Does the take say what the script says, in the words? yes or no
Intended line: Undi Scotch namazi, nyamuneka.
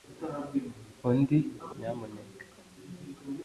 no